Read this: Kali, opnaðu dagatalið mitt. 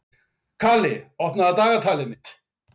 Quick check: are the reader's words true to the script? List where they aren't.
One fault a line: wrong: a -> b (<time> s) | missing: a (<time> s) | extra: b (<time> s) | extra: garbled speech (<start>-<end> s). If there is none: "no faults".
no faults